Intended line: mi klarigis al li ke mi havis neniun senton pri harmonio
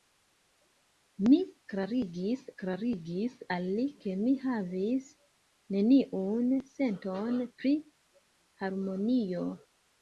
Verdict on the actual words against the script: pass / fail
fail